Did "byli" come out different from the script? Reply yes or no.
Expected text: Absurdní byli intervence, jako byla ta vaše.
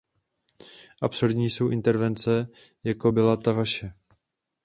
yes